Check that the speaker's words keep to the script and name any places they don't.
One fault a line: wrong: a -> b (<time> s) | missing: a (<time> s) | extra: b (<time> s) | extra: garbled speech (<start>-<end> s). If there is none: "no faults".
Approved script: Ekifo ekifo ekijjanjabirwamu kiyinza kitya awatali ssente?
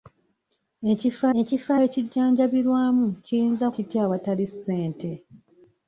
no faults